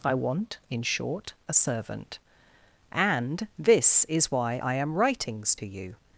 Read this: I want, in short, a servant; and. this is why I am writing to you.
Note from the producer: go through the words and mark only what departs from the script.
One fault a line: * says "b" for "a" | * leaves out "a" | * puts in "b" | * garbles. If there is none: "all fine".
* says "writings" for "writing"